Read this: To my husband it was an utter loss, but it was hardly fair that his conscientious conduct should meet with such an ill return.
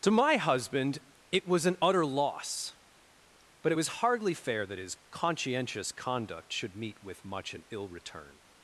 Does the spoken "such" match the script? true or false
false